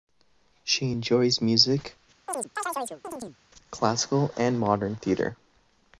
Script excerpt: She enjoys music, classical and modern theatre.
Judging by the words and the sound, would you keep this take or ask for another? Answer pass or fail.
fail